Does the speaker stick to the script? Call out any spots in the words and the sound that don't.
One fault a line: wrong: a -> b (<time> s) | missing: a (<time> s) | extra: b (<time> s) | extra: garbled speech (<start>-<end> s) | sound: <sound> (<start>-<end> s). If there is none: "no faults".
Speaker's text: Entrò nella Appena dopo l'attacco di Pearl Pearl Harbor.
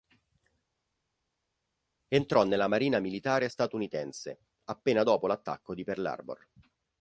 extra: Marina Militare statunitense (2.7 s)
missing: Pearl (6.1 s)